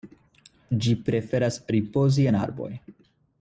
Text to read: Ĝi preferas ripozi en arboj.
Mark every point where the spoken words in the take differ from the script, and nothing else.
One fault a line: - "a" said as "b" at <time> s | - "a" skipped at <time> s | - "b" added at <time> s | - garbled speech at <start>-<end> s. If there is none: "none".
none